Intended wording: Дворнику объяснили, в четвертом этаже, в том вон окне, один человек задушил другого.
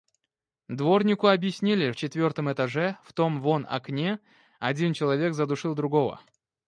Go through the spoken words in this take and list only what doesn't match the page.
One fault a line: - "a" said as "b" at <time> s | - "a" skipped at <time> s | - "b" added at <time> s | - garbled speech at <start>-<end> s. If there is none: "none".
none